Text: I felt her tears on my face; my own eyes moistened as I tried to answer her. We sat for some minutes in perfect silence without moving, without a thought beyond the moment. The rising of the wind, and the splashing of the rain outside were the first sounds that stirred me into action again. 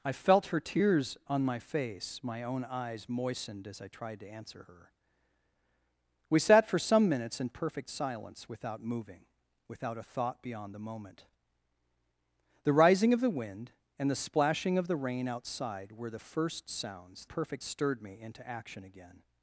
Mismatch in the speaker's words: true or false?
true